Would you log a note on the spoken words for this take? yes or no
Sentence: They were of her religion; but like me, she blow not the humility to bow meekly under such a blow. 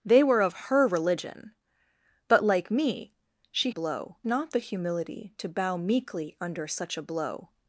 no